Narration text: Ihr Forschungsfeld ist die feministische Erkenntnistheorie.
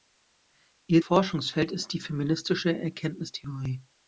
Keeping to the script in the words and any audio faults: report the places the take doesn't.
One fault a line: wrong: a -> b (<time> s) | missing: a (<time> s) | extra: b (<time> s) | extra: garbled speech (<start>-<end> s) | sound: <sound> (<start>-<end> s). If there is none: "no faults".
no faults